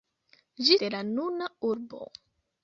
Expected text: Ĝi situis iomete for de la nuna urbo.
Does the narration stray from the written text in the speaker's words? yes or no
yes